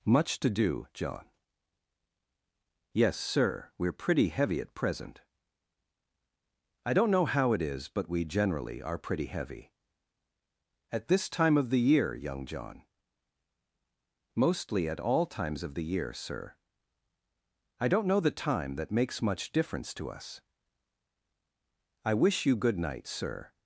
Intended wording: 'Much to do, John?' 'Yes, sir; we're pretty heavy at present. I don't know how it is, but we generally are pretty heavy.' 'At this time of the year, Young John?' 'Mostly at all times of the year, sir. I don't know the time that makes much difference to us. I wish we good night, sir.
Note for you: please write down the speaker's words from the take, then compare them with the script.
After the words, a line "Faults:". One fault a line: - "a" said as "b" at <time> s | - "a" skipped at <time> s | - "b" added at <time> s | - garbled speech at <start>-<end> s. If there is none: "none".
'Much to do, John?' 'Yes, sir; we're pretty heavy at present. I don't know how it is, but we generally are pretty heavy.' 'At this time of the year, Young John?' 'Mostly at all times of the year, sir. I don't know the time that makes much difference to us. I wish you good night, sir.
Faults:
- "we" said as "you" at 22.4 s